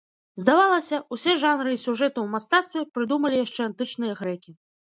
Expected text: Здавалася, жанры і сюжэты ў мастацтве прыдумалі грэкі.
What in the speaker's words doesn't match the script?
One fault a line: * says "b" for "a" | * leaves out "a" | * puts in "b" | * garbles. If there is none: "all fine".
* puts in "усе"
* puts in "яшчэ антычныя"